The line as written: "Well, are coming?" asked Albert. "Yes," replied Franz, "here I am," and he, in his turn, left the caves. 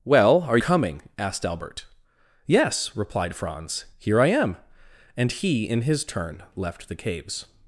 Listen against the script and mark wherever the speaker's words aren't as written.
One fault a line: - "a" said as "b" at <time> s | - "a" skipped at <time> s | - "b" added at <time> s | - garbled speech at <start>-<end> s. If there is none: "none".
none